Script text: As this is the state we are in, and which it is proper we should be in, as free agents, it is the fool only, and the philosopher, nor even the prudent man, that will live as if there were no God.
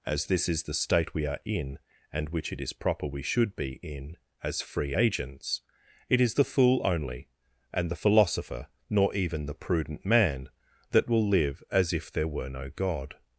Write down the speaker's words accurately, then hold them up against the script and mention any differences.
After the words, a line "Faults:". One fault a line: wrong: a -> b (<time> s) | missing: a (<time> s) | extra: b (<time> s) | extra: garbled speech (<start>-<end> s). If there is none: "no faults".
As this is the state we are in, and which it is proper we should be in, as free agents, it is the fool only, and the philosopher, nor even the prudent man, that will live as if there were no God.
Faults:
no faults